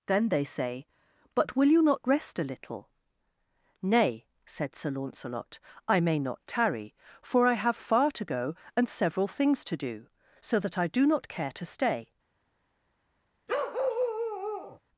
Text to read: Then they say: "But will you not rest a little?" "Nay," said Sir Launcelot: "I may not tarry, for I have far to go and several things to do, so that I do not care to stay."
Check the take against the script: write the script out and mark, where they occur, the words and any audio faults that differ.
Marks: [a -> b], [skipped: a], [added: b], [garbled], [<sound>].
Then they say: "But will you not rest a little?" "Nay," said Sir Launcelot: "I may not tarry, for I have far to go and several things to do, so that I do not care to stay." [bark]